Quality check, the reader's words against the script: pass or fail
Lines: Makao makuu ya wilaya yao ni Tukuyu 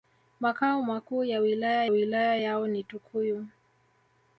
fail